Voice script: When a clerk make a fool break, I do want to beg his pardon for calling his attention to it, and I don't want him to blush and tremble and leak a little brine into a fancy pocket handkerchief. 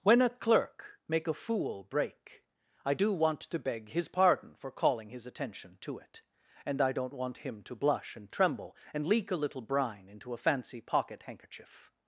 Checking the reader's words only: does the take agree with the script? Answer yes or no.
yes